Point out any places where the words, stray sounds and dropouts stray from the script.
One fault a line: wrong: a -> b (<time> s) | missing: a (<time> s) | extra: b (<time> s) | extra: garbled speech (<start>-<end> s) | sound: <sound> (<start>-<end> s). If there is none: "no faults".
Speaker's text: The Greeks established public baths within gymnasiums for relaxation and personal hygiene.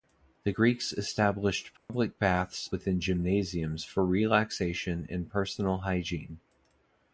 sound: dropout (1.8-1.9 s)